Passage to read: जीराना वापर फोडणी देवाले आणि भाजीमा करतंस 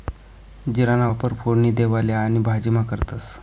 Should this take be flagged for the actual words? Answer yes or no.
no